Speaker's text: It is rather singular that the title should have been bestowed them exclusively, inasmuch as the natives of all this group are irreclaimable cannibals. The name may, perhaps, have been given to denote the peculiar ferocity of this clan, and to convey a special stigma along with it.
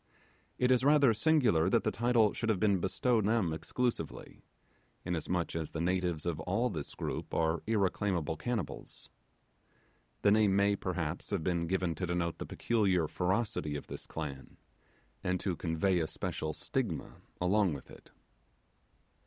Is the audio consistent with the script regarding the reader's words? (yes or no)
yes